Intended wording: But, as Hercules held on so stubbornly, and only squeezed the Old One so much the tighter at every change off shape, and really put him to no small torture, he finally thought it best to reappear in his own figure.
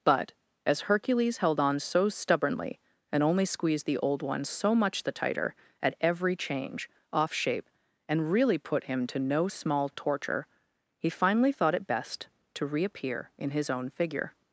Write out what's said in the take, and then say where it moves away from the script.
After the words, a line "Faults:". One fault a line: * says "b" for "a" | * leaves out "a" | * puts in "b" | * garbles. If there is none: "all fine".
But, as Hercules held on so stubbornly, and only squeezed the Old One so much the tighter at every change off shape, and really put him to no small torture, he finally thought it best to reappear in his own figure.
Faults:
all fine